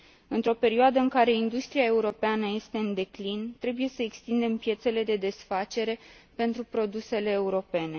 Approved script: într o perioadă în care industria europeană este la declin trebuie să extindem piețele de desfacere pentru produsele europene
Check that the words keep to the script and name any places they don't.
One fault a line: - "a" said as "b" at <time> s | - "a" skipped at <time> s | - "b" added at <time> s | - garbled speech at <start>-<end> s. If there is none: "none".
- "la" said as "în" at 2.8 s